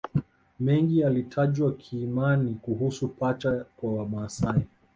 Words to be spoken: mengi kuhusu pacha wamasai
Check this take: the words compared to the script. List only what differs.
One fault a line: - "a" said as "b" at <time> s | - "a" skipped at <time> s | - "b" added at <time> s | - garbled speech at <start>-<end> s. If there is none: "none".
- "yalitajwa kiimani" added at 1.0 s
- "kwa" added at 3.8 s